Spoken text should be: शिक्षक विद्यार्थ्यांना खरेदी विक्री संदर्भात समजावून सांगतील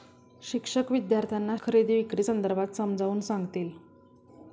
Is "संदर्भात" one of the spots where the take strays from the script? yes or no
no